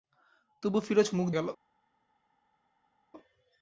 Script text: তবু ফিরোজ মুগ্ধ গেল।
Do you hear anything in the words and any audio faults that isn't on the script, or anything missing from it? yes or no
no